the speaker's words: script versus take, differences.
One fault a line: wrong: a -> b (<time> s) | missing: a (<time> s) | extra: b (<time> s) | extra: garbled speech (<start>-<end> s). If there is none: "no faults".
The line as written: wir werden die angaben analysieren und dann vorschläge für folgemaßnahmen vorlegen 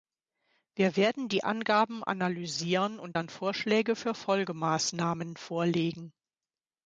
no faults